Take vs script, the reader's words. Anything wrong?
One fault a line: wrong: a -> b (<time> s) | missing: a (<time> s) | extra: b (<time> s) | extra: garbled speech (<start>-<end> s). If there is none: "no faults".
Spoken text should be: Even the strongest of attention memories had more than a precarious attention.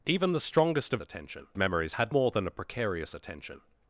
no faults